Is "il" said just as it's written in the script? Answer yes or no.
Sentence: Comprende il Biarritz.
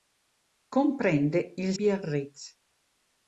yes